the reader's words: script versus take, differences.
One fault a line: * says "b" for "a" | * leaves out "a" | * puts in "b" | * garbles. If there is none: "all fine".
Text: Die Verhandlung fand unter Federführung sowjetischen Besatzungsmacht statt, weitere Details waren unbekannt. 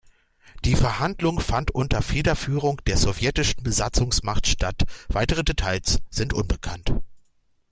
* puts in "der"
* says "sind" for "waren"